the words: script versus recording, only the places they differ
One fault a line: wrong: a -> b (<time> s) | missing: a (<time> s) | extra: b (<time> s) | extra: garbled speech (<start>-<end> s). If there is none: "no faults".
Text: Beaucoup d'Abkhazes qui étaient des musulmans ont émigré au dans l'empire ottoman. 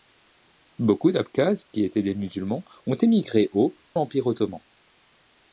missing: dans (3.7 s)